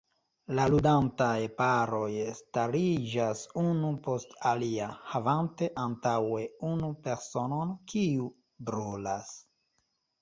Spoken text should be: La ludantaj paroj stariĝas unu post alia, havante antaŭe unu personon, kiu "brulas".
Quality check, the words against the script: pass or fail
pass